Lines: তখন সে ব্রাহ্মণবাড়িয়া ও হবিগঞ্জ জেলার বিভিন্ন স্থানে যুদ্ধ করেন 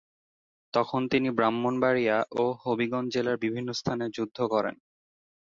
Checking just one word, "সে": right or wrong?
wrong